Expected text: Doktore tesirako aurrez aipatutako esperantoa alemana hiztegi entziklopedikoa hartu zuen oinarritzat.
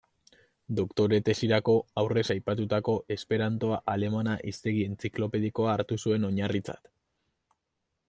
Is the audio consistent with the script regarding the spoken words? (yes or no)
yes